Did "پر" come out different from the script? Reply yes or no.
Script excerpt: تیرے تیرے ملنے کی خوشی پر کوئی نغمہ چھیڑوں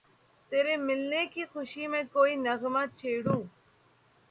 yes